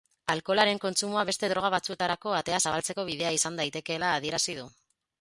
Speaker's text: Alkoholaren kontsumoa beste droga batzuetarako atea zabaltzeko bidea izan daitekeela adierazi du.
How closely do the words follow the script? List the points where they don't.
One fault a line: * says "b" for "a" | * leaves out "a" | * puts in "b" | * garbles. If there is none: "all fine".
all fine